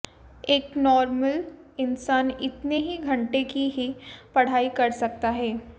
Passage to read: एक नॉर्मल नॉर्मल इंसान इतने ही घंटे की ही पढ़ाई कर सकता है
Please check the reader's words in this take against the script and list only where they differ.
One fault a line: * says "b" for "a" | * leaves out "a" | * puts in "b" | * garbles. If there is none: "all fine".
* leaves out "नॉर्मल"